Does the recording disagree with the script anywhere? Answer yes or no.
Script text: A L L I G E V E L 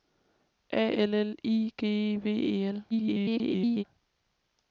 yes